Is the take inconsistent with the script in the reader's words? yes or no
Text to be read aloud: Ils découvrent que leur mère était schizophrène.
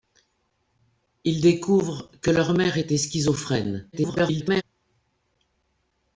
yes